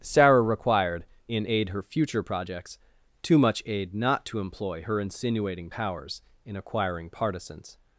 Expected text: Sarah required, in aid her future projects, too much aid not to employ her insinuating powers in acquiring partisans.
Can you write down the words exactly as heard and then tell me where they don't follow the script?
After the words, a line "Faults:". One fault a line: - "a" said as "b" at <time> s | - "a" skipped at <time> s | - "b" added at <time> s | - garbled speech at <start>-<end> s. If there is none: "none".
Sarah required, in aid her future projects, too much aid not to employ her insinuating powers in acquiring partisans.
Faults:
none